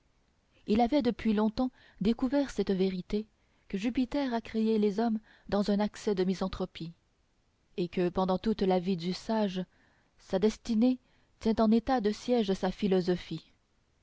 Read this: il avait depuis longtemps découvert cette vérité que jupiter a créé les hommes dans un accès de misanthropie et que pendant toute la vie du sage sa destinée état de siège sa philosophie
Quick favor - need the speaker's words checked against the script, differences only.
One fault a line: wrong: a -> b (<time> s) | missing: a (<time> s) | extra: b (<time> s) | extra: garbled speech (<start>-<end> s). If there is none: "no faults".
extra: tient en (11.4 s)